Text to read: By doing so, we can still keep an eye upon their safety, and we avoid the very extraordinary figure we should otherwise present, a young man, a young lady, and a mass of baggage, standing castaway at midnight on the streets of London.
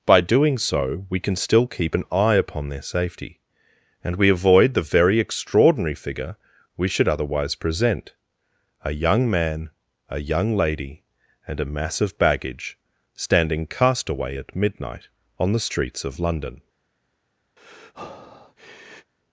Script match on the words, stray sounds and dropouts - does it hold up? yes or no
no